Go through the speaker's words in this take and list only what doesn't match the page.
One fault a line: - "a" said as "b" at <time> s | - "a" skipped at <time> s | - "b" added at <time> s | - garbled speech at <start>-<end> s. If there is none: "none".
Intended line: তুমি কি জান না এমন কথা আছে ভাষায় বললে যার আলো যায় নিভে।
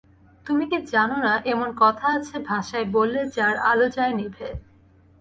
none